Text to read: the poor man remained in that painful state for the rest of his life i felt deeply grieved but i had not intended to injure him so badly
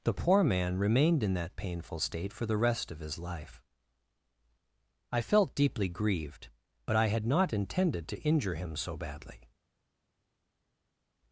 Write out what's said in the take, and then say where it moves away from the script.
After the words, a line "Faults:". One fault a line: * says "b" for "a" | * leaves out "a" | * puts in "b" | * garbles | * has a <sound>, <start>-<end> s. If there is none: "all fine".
the poor man remained in that painful state for the rest of his life i felt deeply grieved but i had not intended to injure him so badly
Faults:
all fine